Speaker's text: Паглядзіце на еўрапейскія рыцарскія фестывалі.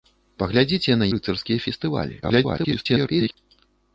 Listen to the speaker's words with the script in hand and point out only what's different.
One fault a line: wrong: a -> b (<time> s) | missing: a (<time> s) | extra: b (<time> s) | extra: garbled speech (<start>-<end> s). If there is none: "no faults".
missing: еўрапейскія (1.1 s)
extra: garbled speech (2.2-3.4 s)